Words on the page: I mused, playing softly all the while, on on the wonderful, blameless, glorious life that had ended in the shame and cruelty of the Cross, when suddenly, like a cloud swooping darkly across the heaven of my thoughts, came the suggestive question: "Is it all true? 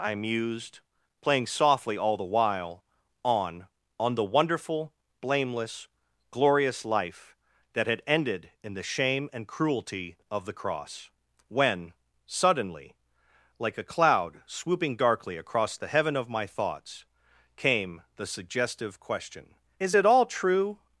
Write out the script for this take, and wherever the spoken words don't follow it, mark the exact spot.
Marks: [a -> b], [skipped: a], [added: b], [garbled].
I mused, playing softly all the while, on on the wonderful, blameless, glorious life that had ended in the shame and cruelty of the Cross, when suddenly, like a cloud swooping darkly across the heaven of my thoughts, came the suggestive question: "Is it all true?